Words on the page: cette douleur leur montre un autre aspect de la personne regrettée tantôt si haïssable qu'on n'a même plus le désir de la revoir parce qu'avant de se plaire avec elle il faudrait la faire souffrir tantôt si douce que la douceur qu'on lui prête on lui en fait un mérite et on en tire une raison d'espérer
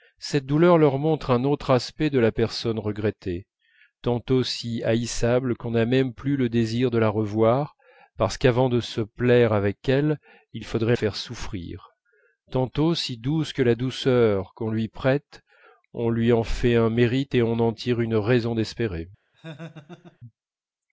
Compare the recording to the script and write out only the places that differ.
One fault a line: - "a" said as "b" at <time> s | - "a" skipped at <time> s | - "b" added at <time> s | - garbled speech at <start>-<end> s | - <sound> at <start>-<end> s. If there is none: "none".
- "la" skipped at 10.9 s
- laugh at 19.3-20.2 s